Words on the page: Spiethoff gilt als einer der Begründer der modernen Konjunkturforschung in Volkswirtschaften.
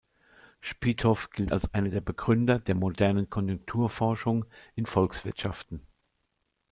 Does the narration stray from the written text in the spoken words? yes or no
no